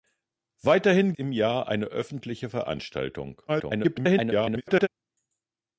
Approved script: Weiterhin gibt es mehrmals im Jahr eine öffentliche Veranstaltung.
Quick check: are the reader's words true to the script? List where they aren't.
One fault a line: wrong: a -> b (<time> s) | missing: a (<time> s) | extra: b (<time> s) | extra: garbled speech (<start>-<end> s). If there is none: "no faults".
missing: gibt es mehrmals (1.1 s)
extra: garbled speech (3.5-4.9 s)